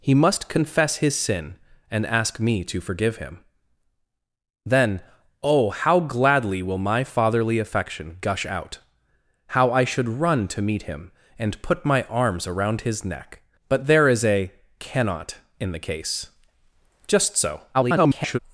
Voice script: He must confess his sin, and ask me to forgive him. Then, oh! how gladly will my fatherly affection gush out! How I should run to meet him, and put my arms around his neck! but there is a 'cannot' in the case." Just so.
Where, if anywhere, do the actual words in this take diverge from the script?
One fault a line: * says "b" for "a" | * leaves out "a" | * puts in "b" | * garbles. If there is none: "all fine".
* garbles